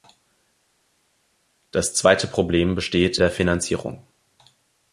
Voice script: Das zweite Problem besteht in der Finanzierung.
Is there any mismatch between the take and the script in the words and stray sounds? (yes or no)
yes